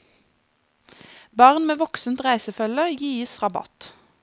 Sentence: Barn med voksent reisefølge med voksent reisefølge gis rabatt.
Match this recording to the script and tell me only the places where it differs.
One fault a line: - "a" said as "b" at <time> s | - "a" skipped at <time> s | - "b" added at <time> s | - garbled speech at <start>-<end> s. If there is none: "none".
- "med voksent reisefølge" skipped at 2.9 s